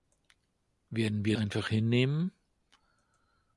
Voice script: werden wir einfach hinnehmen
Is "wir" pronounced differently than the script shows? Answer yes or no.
no